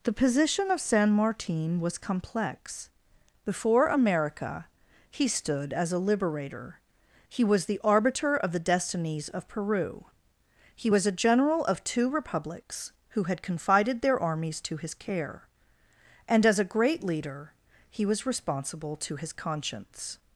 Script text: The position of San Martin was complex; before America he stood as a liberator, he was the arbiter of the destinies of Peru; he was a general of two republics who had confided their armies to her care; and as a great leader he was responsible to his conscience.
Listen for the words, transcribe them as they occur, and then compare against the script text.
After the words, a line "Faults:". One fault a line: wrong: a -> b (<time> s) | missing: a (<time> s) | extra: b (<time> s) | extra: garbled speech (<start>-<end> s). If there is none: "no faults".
The position of San Martin was complex; before America he stood as a liberator, he was the arbiter of the destinies of Peru; he was a general of two republics who had confided their armies to his care; and as a great leader he was responsible to his conscience.
Faults:
wrong: her -> his (14.8 s)